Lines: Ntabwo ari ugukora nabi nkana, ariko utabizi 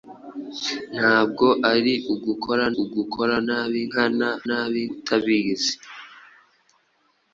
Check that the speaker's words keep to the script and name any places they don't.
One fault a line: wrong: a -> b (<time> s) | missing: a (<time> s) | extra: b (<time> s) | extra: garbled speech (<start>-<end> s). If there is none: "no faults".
extra: ugukora (2.8 s)
wrong: ariko -> nabi (4.5 s)